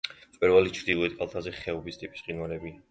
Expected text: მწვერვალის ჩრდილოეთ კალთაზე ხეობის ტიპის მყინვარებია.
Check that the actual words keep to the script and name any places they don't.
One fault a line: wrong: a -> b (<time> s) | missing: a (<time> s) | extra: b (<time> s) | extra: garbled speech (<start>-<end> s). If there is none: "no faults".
no faults